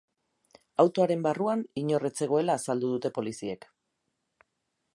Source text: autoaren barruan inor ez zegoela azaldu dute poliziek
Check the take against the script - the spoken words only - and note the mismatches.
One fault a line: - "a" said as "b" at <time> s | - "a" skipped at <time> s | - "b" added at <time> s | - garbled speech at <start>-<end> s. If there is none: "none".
none